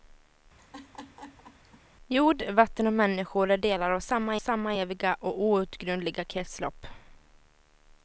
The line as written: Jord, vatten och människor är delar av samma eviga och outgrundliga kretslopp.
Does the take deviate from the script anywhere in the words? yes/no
yes